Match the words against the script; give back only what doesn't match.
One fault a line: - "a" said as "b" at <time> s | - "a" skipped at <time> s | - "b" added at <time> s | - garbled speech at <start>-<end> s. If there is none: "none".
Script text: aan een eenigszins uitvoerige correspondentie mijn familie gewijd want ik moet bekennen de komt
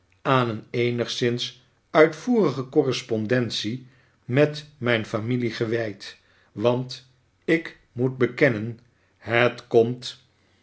- "met" added at 4.2 s
- "de" said as "het" at 9.2 s